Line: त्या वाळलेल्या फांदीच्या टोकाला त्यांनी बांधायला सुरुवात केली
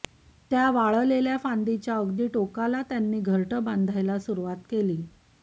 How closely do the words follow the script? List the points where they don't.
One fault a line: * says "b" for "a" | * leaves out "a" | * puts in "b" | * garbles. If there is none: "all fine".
* puts in "अगदी"
* puts in "घरटं"